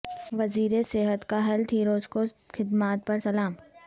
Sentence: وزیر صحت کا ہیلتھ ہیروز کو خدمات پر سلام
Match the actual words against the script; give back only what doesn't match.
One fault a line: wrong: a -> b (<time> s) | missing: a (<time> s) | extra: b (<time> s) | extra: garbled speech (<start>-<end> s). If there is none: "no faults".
no faults